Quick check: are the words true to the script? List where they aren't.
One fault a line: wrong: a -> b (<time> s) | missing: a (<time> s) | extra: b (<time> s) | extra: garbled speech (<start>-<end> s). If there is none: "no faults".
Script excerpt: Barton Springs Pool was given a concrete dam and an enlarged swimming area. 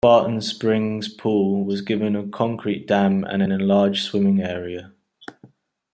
no faults